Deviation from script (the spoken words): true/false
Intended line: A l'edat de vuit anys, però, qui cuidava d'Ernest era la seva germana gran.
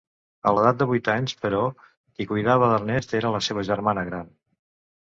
false